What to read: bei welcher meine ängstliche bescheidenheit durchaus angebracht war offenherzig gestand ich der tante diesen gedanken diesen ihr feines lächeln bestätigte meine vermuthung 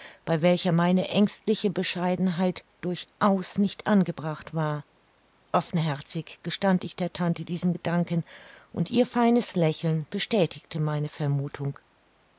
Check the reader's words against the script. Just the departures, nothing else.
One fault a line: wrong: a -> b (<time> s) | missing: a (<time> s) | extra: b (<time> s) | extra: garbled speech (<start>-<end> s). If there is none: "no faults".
extra: nicht (3.6 s)
wrong: diesen -> und (8.7 s)